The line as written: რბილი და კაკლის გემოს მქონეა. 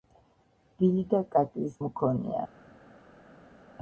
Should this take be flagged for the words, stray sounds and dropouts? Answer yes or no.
yes